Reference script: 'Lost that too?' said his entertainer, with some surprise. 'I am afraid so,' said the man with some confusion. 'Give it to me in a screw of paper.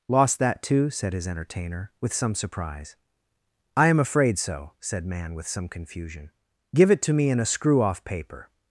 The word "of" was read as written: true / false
false